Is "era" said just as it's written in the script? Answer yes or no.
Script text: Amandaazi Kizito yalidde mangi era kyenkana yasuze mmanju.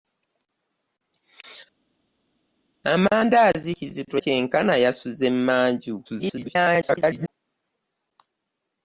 no